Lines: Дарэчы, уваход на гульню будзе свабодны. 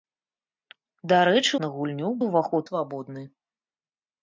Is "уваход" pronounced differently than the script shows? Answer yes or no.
yes